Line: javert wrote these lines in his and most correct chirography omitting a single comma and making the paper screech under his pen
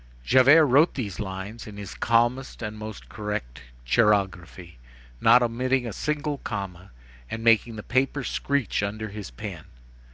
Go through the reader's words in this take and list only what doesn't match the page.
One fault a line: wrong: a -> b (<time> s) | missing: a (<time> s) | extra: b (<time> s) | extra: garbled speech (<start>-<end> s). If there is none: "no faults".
extra: calmest (1.9 s)
extra: not (5.2 s)